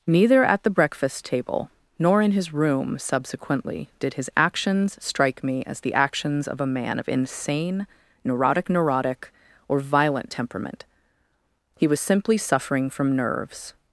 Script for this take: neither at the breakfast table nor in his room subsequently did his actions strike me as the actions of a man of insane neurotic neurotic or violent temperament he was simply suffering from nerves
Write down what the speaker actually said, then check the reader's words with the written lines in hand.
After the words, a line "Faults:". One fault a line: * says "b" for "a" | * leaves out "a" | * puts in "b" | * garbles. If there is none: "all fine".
neither at the breakfast table nor in his room subsequently did his actions strike me as the actions of a man of insane neurotic neurotic or violent temperament he was simply suffering from nerves
Faults:
all fine